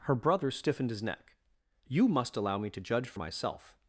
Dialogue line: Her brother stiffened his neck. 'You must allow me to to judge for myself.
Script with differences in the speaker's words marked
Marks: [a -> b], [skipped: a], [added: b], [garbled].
Her brother stiffened his neck. 'You must allow me to [skipped: to] judge for myself.